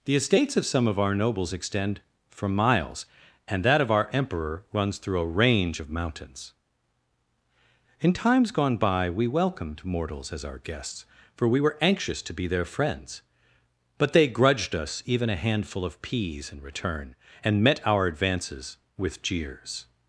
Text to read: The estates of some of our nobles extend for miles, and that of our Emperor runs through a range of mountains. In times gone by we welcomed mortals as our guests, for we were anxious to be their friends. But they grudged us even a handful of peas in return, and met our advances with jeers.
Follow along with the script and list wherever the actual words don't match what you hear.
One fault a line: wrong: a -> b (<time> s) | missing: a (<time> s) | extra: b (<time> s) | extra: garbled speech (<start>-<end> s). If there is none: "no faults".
no faults